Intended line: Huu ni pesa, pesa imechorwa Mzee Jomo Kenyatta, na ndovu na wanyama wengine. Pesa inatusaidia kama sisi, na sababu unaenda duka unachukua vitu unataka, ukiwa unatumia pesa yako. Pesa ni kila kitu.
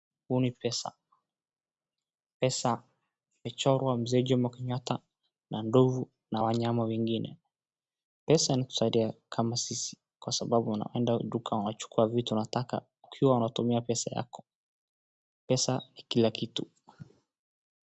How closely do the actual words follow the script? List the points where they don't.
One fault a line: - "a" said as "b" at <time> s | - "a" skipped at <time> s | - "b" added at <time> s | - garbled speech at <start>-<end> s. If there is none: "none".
- "na" said as "kwa" at 10.2 s